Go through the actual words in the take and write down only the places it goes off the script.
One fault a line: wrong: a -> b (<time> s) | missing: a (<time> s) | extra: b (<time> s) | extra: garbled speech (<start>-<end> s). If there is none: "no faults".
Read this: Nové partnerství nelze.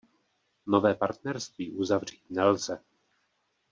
extra: uzavřít (1.7 s)